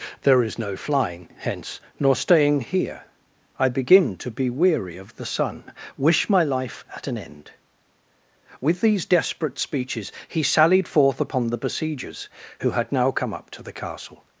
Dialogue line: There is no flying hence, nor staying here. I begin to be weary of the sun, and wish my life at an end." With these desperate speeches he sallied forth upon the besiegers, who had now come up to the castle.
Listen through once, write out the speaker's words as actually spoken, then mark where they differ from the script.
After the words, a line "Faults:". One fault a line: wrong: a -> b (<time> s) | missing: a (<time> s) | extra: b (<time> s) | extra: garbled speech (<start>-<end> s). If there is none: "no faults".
There is no flying hence, nor staying here. I begin to be weary of the sun, wish my life at an end." With these desperate speeches he sallied forth upon the besiegers, who had now come up to the castle.
Faults:
missing: and (5.7 s)